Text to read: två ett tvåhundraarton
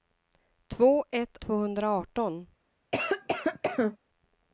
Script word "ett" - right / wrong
right